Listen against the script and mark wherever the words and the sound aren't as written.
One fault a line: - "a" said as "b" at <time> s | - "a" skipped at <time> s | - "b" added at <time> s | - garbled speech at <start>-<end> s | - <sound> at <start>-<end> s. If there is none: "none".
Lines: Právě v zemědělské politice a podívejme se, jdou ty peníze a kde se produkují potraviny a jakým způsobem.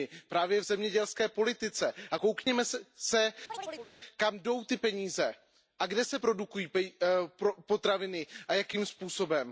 - dropout at 2.4-2.5 s
- chirp at 3.5-3.9 s
- "kam" added at 4.2 s